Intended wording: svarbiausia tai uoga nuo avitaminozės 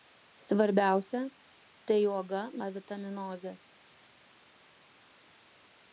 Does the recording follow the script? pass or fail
fail